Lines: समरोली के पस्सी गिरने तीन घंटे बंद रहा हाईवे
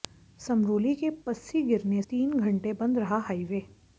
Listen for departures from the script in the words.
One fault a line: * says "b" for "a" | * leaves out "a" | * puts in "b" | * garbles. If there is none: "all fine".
all fine